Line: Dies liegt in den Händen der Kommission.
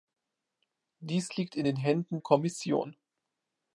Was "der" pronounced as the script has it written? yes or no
no